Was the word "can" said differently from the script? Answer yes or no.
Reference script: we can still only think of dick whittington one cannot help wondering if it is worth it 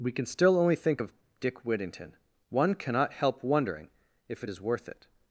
no